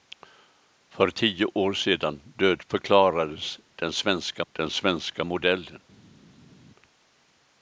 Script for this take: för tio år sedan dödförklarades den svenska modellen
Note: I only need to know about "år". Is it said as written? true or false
true